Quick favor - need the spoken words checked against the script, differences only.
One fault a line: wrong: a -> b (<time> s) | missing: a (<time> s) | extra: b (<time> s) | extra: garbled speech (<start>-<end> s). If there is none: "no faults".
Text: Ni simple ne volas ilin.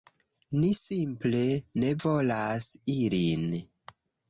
no faults